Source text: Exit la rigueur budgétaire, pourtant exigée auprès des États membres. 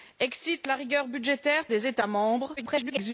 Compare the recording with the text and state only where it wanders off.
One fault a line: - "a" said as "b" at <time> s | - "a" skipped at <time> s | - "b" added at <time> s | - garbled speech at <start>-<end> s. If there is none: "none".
- "pourtant exigée auprès" skipped at 1.7 s
- garbled speech at 2.6-3.1 s